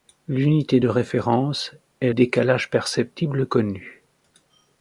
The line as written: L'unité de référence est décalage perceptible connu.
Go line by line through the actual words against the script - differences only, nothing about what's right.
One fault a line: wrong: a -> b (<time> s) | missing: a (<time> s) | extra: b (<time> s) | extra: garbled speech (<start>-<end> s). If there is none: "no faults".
no faults